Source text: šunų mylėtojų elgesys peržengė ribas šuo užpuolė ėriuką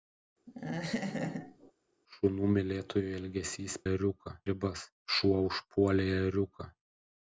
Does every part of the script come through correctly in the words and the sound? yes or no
no